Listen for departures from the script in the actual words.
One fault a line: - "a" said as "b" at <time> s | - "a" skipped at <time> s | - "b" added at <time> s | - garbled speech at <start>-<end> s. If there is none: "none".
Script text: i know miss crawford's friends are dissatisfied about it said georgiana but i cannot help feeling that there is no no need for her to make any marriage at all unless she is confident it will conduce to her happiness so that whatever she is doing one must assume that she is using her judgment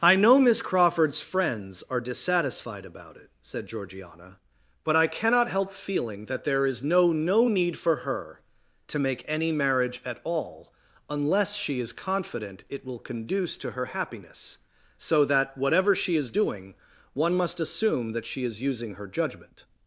none